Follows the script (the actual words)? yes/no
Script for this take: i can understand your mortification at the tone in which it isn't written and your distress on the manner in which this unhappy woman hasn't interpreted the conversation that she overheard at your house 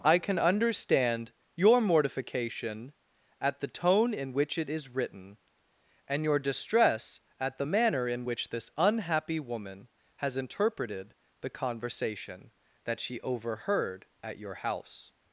no